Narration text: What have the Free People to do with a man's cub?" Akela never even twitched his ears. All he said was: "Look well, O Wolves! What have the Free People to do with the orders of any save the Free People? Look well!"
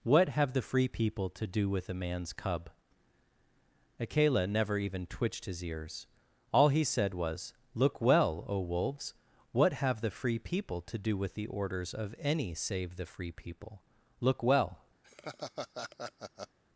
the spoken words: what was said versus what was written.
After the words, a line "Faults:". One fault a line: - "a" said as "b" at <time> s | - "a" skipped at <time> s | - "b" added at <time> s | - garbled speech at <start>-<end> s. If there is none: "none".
What have the Free People to do with a man's cub?" Akela never even twitched his ears. All he said was: "Look well, O Wolves! What have the Free People to do with the orders of any save the Free People? Look well!"
Faults:
none